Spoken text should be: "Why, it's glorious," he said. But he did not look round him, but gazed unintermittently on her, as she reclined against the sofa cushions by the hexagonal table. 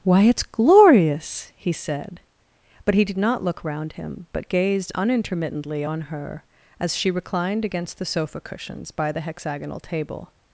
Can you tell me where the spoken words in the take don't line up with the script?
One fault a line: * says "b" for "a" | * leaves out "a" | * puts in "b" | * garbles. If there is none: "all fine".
all fine